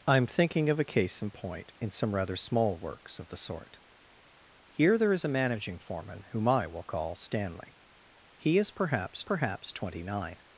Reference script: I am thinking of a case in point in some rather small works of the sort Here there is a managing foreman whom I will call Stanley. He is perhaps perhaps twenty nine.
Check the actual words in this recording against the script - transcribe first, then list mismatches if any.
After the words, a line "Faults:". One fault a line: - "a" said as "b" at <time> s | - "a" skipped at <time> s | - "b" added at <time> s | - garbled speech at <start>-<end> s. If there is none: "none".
I am thinking of a case in point in some rather small works of the sort Here there is a managing foreman whom I will call Stanley. He is perhaps perhaps twenty nine.
Faults:
none